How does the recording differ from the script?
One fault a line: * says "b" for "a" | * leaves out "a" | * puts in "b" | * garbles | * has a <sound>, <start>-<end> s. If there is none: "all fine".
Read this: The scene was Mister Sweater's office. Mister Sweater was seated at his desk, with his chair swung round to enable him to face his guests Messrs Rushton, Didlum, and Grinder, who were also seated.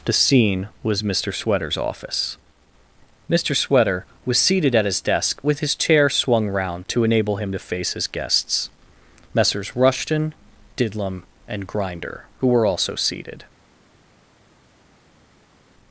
all fine